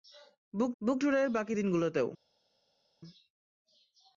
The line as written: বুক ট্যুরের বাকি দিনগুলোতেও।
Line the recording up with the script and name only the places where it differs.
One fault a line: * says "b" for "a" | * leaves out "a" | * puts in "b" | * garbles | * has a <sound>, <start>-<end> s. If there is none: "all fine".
* puts in "বুক"